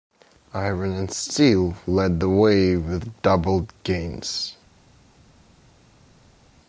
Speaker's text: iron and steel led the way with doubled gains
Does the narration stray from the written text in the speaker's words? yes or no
no